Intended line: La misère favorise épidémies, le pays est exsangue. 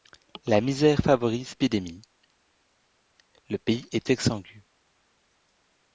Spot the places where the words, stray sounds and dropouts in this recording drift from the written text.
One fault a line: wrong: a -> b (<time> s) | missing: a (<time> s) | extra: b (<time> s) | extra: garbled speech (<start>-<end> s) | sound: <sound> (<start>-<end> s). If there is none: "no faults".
no faults